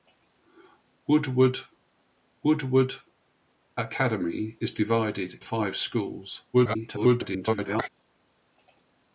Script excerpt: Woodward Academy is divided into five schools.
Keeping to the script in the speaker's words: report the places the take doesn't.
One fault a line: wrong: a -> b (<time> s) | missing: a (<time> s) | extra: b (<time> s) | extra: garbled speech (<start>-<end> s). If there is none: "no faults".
extra: woodward (2.4 s)
missing: into (5.4 s)
extra: garbled speech (6.5-7.9 s)